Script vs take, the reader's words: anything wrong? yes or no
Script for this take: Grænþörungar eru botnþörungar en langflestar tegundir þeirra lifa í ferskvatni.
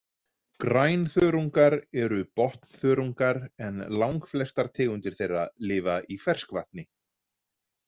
no